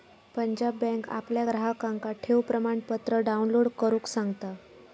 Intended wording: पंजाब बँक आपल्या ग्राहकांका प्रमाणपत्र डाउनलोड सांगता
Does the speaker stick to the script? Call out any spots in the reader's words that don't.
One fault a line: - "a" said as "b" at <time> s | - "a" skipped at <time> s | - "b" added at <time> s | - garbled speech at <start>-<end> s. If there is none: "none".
- "ठेव" added at 2.2 s
- "करुक" added at 3.8 s